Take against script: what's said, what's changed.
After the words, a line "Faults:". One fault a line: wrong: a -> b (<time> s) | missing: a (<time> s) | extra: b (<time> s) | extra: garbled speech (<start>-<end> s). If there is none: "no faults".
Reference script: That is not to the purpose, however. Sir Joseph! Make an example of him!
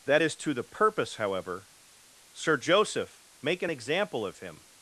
That is to the purpose, however. Sir Joseph! Make an example of him!
Faults:
missing: not (0.3 s)